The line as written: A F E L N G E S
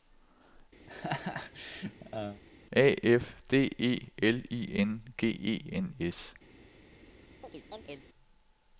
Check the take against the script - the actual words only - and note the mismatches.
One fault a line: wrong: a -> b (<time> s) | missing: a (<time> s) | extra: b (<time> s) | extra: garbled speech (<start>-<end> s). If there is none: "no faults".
extra: D (3.5 s)
extra: I (4.5 s)
extra: N (5.7 s)